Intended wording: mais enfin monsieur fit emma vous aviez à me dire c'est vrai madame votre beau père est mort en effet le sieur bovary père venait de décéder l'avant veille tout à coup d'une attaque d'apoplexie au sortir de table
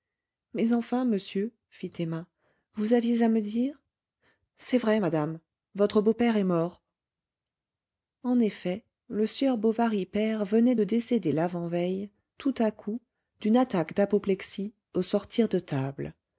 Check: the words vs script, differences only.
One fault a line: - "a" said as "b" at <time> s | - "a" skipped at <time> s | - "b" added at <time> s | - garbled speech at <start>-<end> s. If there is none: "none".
none